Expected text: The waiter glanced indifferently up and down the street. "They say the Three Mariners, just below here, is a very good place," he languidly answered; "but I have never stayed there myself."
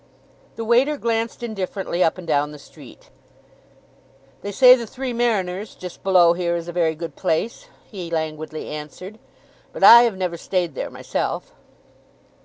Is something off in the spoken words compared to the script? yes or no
no